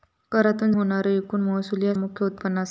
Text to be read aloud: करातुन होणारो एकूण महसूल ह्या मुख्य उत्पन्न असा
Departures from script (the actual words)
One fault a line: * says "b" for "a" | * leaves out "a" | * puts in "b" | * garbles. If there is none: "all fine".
all fine